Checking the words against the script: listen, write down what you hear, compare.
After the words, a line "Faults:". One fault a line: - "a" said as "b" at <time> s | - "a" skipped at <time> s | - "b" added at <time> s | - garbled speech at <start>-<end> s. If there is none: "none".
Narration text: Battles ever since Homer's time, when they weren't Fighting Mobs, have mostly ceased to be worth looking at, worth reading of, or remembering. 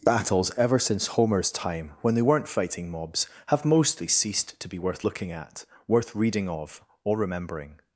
Battles ever since Homer's time, when they weren't Fighting Mobs, have mostly ceased to be worth looking at, worth reading of, or remembering.
Faults:
none